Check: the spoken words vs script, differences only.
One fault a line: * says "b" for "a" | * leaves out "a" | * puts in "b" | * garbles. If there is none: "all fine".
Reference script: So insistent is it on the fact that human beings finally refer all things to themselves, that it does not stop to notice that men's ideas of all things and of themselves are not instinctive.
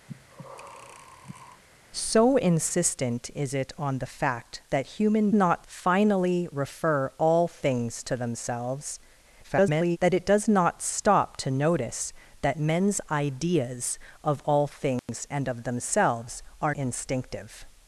* says "not" for "beings"
* garbles
* leaves out "not"